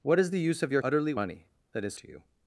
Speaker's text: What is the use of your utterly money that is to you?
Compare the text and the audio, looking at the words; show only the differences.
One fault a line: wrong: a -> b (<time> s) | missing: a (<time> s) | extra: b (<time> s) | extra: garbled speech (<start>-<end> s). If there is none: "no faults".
no faults